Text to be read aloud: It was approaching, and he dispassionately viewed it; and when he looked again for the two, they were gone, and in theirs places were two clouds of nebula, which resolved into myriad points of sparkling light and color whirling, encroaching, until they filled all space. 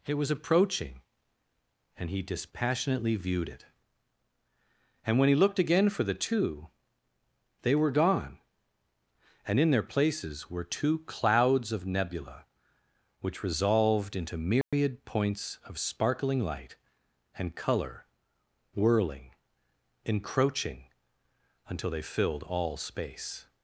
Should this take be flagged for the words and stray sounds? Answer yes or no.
yes